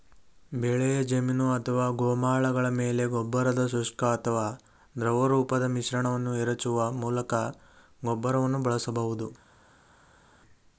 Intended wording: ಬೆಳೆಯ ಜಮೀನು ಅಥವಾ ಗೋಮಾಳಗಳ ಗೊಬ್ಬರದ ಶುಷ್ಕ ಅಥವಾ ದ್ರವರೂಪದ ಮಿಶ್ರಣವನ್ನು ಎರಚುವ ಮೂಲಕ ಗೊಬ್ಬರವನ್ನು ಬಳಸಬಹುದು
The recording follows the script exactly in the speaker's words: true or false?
false